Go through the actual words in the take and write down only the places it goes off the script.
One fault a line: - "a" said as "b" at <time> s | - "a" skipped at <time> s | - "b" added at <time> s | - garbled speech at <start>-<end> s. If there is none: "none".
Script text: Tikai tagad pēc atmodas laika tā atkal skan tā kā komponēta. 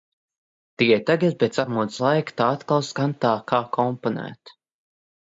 none